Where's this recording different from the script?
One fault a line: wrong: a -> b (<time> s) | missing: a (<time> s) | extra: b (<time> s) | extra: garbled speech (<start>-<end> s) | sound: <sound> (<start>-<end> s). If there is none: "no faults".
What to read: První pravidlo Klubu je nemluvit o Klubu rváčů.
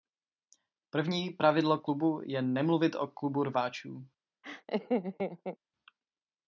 sound: laugh (4.4-5.6 s)